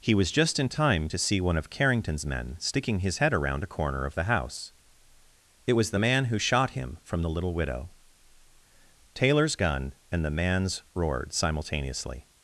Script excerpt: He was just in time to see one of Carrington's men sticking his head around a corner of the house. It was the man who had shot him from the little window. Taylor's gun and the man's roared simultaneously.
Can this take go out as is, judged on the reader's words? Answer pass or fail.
fail